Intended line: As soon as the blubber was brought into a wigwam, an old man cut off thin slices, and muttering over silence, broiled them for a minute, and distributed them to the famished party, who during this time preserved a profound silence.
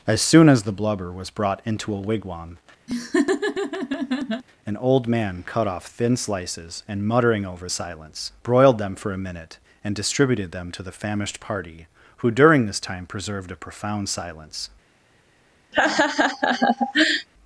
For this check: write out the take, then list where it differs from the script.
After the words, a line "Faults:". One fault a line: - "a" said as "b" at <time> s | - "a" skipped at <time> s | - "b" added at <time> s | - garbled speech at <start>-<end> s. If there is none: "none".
As soon as the blubber was brought into a wigwam, an old man cut off thin slices, and muttering over silence, broiled them for a minute, and distributed them to the famished party, who during this time preserved a profound silence.
Faults:
none